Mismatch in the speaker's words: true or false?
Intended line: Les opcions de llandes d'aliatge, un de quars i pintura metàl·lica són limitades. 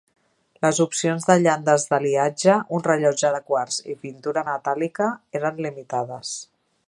true